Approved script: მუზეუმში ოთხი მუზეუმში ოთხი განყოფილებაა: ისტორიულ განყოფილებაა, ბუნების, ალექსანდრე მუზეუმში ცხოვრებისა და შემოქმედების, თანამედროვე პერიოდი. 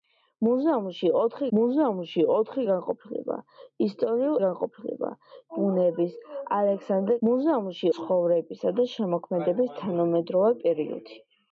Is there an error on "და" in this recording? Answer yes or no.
no